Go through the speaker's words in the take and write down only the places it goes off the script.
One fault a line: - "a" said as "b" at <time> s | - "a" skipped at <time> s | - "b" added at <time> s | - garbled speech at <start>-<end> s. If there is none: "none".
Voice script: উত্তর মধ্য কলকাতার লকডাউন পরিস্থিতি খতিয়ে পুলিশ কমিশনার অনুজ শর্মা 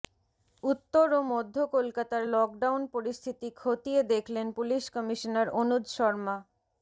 - "ও" added at 1.1 s
- "দেখলেন" added at 4.1 s